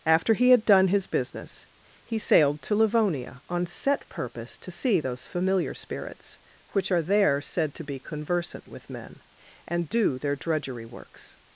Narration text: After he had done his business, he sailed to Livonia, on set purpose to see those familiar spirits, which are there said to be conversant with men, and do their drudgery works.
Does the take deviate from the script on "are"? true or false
false